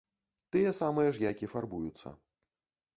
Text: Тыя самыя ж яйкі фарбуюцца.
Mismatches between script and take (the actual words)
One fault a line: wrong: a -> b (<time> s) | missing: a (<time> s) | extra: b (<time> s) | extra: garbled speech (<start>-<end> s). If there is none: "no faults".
no faults